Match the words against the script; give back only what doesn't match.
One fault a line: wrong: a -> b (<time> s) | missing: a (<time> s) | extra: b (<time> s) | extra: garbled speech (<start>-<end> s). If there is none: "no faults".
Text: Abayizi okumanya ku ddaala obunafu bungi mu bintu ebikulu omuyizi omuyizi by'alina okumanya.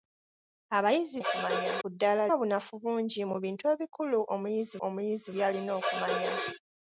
no faults